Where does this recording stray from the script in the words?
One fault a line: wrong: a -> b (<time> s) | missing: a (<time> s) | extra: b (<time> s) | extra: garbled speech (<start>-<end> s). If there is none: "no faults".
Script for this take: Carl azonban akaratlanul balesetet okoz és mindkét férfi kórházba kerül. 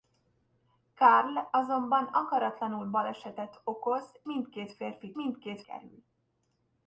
missing: és (4.2 s)
wrong: kórházba -> mindkét (5.1 s)